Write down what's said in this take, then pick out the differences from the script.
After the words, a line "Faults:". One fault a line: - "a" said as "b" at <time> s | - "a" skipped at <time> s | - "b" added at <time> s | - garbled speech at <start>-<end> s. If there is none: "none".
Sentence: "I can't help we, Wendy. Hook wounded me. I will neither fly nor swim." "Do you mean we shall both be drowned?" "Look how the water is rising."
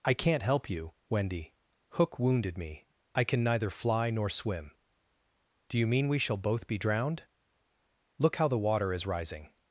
"I can't help you, Wendy. Hook wounded me. I can neither fly nor swim." "Do you mean we shall both be drowned?" "Look how the water is rising."
Faults:
- "we" said as "you" at 0.7 s
- "will" said as "can" at 3.2 s